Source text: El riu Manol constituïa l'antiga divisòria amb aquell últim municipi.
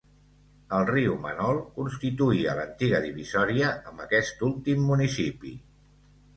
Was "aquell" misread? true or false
true